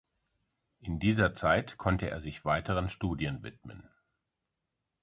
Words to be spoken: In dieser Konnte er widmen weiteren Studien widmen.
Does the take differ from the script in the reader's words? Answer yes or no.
yes